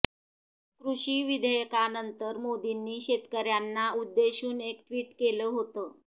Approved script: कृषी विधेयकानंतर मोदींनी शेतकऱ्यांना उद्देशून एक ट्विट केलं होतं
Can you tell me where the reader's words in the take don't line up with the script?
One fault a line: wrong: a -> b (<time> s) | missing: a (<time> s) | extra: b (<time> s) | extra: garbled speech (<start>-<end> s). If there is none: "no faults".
no faults